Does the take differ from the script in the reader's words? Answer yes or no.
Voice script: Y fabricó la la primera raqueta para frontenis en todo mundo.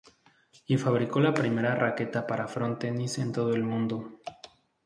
yes